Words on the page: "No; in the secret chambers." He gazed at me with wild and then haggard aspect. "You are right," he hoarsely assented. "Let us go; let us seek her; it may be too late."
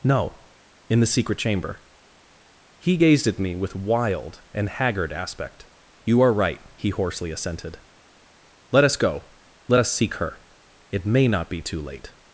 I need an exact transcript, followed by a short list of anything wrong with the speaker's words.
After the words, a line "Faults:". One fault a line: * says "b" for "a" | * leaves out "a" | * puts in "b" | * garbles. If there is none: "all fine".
"No; in the secret chamber." He gazed at me with wild and haggard aspect. "You are right," he hoarsely assented. "Let us go; let us seek her; it may not be too late."
Faults:
* says "chamber" for "chambers"
* leaves out "then"
* puts in "not"